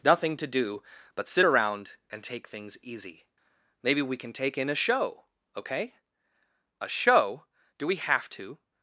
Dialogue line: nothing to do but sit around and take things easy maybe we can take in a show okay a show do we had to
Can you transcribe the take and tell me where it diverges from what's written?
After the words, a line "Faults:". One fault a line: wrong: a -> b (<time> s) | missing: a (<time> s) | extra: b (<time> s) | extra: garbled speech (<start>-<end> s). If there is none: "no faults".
nothing to do but sit around and take things easy maybe we can take in a show okay a show do we have to
Faults:
wrong: had -> have (8.0 s)